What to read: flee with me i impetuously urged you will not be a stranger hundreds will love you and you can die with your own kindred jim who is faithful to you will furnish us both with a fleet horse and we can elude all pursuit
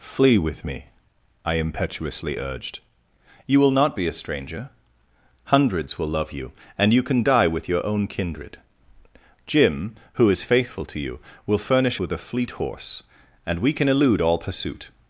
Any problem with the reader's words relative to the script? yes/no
yes